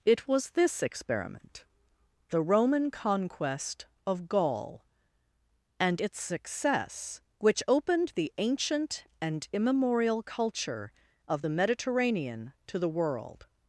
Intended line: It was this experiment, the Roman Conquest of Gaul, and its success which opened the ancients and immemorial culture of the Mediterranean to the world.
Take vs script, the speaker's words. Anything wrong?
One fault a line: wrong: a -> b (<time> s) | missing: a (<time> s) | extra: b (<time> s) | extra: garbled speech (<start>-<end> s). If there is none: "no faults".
wrong: ancients -> ancient (8.4 s)